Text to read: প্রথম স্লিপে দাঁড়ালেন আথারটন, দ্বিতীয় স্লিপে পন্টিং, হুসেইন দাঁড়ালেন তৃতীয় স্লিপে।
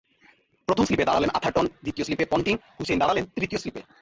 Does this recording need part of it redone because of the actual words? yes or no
no